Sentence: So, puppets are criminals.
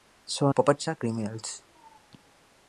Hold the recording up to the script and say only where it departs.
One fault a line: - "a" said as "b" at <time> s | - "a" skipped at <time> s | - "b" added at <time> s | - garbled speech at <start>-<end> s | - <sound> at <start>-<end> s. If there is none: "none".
none